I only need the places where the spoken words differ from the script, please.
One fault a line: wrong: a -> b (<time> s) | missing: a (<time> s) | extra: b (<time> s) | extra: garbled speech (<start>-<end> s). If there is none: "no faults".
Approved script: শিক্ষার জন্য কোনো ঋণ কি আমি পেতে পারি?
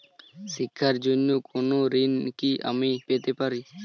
no faults